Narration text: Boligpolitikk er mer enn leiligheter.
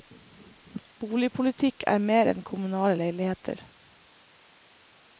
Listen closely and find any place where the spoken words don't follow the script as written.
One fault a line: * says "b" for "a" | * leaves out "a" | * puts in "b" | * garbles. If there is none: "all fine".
* puts in "kommunale"